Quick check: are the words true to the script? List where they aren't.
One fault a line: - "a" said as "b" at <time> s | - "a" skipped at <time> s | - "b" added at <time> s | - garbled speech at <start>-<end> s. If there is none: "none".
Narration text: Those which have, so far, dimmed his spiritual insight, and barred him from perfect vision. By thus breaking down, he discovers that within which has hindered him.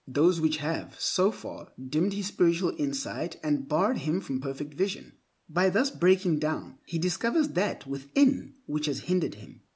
none